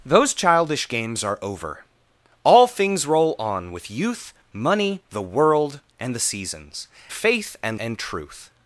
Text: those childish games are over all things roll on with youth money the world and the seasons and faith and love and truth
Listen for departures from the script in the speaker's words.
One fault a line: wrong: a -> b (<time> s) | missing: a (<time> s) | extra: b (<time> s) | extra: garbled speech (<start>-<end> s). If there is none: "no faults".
missing: and (6.9 s)
missing: love (7.8 s)